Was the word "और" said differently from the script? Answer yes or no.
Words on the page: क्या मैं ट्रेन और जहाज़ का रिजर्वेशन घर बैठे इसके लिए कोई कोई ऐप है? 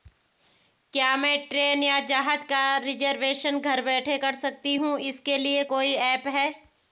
yes